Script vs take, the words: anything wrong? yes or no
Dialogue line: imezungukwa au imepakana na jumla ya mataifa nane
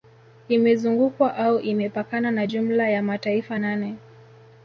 no